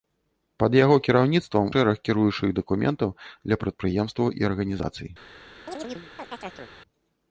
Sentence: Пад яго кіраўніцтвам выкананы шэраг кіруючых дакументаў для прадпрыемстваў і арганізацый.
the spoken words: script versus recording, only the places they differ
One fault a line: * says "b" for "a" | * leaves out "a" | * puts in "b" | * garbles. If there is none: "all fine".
* leaves out "выкананы"